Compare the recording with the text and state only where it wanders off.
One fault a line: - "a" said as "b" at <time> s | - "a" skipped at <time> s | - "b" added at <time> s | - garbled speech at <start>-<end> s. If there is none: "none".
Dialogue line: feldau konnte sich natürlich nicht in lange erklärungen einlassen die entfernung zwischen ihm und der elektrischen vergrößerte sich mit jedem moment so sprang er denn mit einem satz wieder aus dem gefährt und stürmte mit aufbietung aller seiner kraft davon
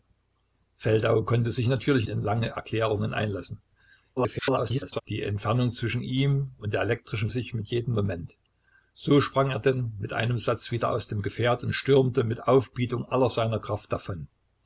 - "nicht" skipped at 2.1 s
- garbled speech at 4.2-5.0 s
- "vergrößerte" skipped at 7.3 s